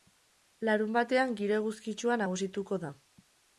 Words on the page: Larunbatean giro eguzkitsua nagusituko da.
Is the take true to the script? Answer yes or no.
yes